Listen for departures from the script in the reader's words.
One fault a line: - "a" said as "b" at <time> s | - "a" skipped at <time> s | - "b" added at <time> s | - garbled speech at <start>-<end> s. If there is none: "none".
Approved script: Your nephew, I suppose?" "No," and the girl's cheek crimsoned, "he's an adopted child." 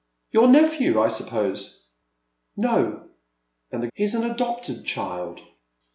- "girl's cheek crimsoned" skipped at 3.9 s